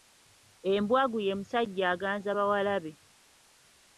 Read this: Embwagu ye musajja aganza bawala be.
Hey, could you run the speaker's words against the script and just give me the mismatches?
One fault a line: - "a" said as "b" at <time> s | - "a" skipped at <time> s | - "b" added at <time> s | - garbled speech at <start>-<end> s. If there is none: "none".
none